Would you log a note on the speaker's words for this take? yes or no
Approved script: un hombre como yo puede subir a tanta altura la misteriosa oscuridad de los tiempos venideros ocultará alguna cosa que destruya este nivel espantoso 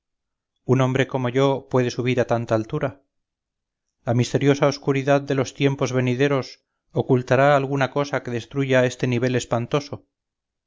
no